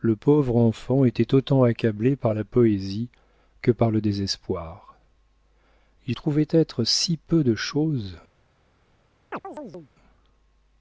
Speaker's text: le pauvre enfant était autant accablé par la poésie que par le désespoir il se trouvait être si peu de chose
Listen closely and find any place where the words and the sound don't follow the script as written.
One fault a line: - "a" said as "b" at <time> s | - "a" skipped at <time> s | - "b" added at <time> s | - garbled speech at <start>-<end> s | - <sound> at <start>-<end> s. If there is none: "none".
- "se" skipped at 6.1 s
- chirp at 9.3-9.9 s